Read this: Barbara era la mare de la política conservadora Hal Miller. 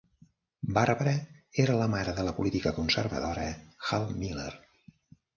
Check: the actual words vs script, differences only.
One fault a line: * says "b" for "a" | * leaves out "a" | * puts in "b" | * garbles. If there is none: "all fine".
all fine